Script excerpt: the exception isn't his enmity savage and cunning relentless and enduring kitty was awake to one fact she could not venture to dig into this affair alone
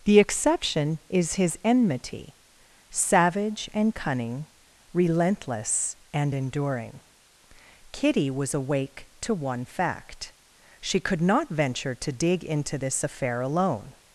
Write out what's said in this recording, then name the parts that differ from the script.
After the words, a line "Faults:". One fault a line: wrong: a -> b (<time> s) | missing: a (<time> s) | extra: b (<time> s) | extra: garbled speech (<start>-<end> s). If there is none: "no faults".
the exception is his enmity savage and cunning relentless and enduring kitty was awake to one fact she could not venture to dig into this affair alone
Faults:
wrong: isn't -> is (1.1 s)